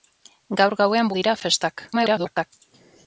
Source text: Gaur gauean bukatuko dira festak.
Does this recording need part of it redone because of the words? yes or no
yes